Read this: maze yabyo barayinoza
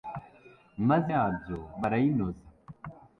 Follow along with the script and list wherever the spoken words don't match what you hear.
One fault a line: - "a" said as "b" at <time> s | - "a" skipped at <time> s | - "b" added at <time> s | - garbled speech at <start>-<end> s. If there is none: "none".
none